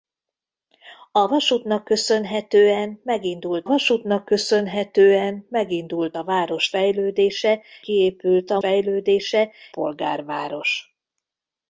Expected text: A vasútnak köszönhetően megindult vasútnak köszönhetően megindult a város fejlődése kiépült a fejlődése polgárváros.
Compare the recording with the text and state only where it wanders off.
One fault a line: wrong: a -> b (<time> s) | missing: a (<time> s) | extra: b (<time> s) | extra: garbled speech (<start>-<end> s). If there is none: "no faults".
no faults